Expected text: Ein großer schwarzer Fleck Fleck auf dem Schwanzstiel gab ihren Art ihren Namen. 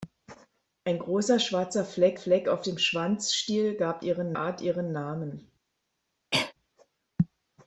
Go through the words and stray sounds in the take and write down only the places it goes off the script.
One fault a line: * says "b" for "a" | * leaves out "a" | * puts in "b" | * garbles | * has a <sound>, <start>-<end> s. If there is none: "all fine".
* has a cough, 6.3-6.5 s